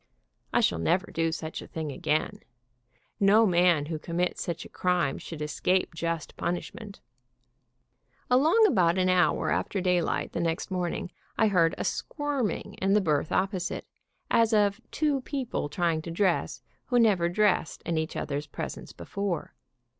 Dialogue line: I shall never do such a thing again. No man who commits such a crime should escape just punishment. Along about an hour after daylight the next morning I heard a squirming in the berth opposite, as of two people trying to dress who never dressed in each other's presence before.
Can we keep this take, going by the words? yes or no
yes